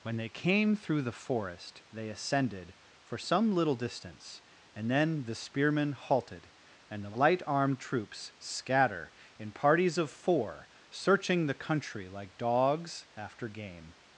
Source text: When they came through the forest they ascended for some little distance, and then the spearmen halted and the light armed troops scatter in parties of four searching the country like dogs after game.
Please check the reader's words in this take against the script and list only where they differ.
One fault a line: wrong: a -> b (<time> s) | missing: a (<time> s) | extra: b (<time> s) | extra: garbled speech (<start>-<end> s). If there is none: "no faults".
no faults